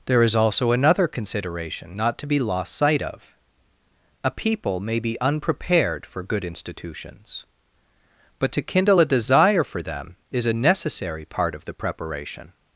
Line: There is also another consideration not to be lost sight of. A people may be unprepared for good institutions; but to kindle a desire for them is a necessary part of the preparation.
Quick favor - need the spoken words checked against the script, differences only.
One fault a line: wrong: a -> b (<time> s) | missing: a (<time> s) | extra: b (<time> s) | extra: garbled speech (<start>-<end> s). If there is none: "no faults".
no faults